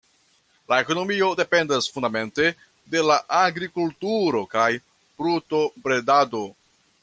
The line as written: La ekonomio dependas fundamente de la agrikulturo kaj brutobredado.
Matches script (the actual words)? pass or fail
pass